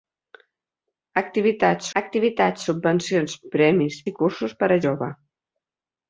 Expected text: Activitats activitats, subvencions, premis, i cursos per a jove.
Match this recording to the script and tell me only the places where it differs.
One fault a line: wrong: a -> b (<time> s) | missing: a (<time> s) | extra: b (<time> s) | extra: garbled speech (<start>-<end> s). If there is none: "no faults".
no faults